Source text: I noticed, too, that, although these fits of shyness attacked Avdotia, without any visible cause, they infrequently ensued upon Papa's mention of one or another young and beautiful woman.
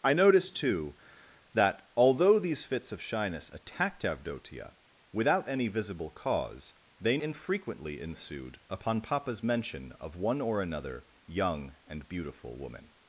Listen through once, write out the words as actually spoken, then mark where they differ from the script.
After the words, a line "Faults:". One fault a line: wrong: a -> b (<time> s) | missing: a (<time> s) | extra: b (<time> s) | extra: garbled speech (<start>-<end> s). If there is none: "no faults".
I noticed, too, that, although these fits of shyness attacked Avdotia, without any visible cause, they infrequently ensued upon Papa's mention of one or another young and beautiful woman.
Faults:
no faults